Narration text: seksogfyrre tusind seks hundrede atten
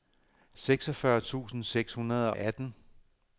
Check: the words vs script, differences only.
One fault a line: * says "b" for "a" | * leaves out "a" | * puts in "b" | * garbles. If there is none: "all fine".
all fine